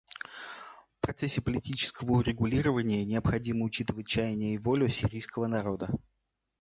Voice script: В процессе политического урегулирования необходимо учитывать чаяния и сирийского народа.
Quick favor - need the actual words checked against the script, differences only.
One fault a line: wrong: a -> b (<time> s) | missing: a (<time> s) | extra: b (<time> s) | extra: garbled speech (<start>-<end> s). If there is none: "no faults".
extra: волю (4.6 s)